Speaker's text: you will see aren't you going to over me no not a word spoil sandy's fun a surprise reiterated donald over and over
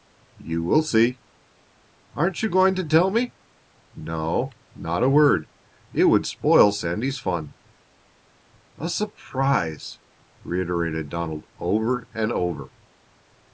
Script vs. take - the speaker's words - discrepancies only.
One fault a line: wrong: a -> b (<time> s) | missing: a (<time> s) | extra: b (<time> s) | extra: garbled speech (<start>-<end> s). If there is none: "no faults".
wrong: over -> tell (2.8 s)
extra: it would (5.9 s)